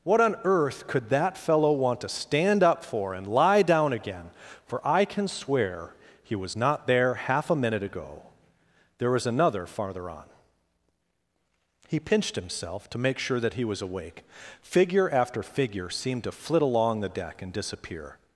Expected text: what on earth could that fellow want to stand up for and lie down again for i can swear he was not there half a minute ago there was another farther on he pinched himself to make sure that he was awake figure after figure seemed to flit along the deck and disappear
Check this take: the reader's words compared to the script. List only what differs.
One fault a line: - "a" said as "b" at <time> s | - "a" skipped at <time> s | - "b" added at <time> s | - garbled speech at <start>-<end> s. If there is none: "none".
none